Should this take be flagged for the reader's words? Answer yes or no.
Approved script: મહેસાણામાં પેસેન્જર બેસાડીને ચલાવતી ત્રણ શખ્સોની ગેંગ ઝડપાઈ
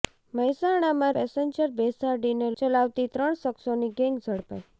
no